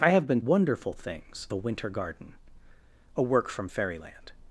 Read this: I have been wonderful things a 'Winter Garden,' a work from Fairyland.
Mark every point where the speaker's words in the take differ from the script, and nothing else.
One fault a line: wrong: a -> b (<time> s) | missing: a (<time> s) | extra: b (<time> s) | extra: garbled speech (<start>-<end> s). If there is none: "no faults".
no faults